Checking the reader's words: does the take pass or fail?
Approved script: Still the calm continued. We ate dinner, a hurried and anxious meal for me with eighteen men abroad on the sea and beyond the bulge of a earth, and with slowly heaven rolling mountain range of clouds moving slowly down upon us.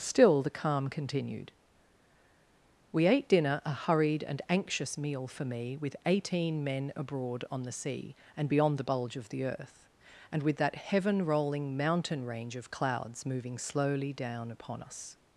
fail